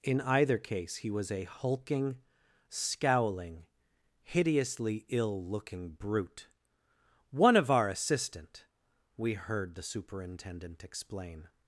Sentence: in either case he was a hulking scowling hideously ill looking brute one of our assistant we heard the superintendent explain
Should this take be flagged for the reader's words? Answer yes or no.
no